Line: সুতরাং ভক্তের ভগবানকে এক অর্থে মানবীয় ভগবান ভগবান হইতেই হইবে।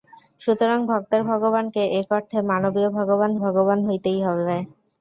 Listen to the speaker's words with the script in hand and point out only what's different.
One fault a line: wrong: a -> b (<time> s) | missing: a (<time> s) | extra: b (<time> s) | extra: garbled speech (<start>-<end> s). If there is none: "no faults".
no faults